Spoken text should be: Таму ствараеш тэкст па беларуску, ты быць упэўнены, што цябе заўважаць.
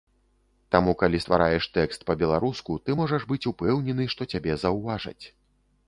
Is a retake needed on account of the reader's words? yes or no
yes